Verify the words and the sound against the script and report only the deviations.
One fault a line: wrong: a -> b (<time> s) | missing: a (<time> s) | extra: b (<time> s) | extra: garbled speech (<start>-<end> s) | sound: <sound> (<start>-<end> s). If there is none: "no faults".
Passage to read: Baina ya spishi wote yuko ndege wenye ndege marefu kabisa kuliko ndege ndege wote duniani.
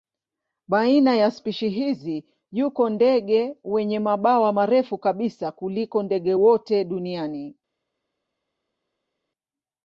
wrong: wote -> hizi (1.7 s)
wrong: ndege -> mabawa (4.0 s)
missing: ndege (6.3 s)